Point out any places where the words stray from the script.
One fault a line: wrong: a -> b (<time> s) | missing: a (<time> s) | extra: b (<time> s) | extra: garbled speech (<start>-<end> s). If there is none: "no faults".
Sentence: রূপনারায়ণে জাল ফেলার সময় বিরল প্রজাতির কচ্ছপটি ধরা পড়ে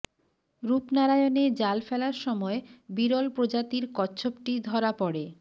no faults